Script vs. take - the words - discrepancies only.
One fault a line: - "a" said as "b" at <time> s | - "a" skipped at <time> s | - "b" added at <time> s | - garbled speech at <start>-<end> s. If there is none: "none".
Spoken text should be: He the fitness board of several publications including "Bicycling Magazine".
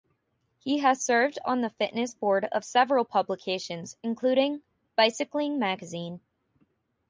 - "has served on" added at 0.8 s